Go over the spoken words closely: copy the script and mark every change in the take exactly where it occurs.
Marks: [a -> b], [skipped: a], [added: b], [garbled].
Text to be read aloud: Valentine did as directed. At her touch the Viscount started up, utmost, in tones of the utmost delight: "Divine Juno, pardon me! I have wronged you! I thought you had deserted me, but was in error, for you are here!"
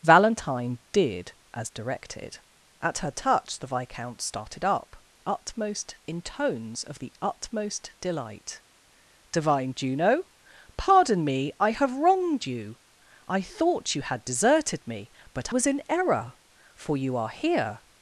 Valentine did as directed. At her touch the Viscount started up, utmost, in tones of the utmost delight: "Divine Juno, pardon me! I have wronged you! I thought you had deserted me, but was in error, for you are here!"